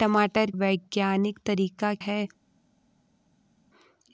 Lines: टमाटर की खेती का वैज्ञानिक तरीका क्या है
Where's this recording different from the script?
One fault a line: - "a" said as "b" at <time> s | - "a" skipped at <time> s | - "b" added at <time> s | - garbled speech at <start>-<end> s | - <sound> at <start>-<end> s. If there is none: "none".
- "की खेती का" skipped at 0.5 s
- "क्या" skipped at 1.9 s